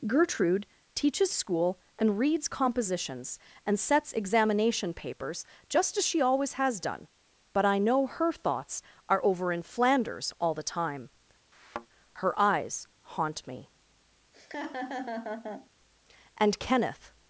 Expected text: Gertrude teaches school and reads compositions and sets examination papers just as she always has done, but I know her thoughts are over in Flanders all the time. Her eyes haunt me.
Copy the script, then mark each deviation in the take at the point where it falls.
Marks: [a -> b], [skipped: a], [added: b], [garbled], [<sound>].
Gertrude teaches school and reads compositions and sets examination papers just as she always has done, but I know her thoughts are over in Flanders all the time. [thud] Her eyes haunt me. [laugh] [added: And Kenneth]